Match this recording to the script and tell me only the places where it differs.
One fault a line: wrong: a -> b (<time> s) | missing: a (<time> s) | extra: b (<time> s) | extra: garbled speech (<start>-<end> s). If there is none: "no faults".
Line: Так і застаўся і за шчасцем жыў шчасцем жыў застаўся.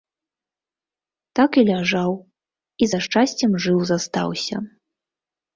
wrong: застаўся -> ляжаў (1.7 s)
missing: шчасцем жыў (3.8 s)